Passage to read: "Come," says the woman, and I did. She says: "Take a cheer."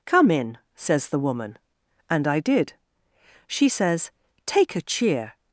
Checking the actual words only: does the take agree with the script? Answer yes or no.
no